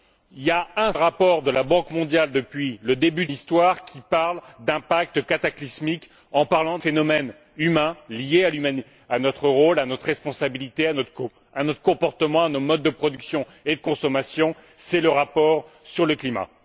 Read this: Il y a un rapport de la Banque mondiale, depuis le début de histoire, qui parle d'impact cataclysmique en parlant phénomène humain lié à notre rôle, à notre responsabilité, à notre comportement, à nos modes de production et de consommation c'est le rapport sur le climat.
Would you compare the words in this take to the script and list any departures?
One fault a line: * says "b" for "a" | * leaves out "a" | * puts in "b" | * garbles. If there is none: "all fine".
all fine